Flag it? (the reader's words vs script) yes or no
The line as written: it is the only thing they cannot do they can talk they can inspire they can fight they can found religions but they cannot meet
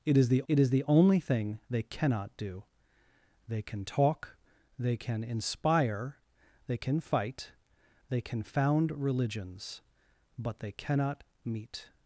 yes